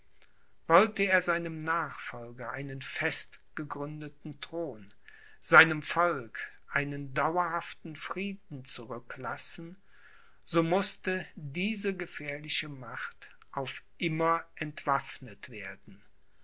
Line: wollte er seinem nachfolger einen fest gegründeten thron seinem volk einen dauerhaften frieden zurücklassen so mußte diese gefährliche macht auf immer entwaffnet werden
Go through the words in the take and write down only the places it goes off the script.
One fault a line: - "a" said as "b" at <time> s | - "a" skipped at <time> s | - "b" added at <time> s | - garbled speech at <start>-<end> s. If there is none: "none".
none